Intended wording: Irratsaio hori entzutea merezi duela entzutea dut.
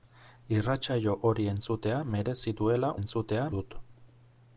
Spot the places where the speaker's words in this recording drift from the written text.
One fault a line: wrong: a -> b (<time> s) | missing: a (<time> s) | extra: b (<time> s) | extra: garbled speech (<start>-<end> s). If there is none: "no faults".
no faults